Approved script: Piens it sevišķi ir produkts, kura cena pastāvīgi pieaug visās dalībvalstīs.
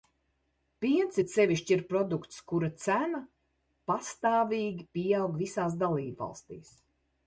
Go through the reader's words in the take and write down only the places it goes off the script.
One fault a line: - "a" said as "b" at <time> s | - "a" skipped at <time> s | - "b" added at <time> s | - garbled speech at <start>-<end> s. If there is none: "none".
none